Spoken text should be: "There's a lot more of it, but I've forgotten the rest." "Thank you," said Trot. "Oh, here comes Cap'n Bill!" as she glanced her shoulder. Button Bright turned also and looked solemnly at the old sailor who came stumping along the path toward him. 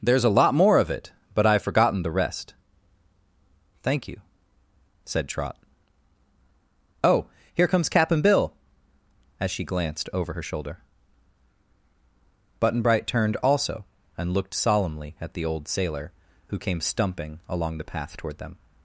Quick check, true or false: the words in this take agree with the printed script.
false